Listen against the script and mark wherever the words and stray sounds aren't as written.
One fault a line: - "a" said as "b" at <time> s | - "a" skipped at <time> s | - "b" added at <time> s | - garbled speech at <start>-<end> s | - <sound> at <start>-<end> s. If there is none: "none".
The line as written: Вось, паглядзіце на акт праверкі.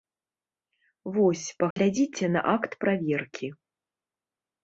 - dropout at 1.7-1.8 s